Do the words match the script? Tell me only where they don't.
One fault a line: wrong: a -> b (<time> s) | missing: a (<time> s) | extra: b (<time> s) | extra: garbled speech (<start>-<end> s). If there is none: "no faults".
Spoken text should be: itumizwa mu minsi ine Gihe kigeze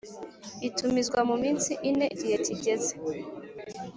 no faults